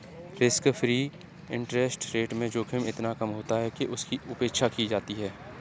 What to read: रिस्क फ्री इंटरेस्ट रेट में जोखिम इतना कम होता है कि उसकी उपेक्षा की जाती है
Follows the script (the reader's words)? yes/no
yes